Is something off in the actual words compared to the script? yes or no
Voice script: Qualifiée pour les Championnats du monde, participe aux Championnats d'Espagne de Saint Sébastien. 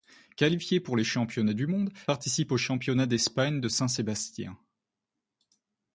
no